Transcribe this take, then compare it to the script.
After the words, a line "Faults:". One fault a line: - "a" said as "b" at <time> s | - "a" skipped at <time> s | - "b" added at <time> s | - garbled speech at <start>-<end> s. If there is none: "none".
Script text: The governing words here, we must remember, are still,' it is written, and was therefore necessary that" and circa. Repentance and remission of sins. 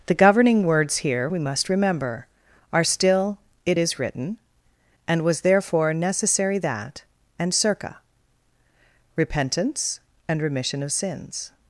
The governing words here, we must remember, are still,' it is written, and was therefore necessary that" and circa. Repentance and remission of sins.
Faults:
none